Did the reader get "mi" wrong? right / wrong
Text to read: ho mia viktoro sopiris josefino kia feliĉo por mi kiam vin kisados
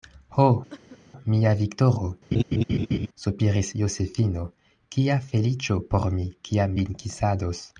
right